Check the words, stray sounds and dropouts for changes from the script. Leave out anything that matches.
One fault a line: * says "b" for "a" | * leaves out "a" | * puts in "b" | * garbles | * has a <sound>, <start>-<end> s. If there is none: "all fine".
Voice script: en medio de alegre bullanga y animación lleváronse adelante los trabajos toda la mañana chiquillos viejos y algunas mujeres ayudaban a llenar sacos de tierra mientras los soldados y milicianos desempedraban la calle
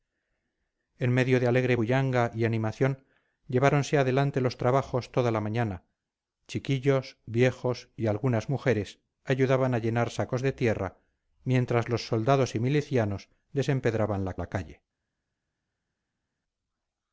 * puts in "la"